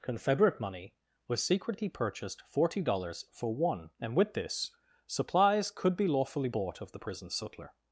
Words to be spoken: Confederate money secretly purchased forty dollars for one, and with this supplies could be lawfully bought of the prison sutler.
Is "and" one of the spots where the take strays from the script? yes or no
no